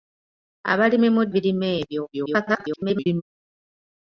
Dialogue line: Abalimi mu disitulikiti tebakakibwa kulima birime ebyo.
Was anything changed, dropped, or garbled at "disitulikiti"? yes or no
yes